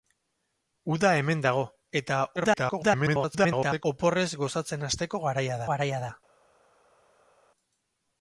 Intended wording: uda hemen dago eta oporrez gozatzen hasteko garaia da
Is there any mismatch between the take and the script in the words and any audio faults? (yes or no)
yes